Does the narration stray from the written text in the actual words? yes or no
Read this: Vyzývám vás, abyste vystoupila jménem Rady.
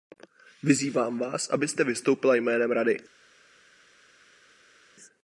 no